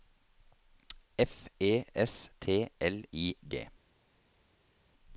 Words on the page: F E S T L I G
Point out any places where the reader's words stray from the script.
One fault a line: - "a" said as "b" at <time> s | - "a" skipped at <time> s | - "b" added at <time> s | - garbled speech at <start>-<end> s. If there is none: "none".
none